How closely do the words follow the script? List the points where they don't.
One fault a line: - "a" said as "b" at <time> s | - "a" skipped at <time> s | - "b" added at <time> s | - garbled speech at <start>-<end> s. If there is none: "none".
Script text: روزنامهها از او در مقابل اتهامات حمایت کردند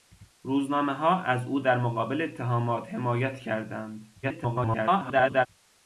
- garbled speech at 4.2-5.5 s